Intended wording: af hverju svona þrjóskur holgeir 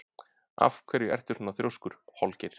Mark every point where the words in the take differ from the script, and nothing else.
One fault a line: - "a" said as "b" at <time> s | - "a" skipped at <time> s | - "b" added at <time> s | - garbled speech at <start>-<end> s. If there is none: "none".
- "ertu" added at 1.2 s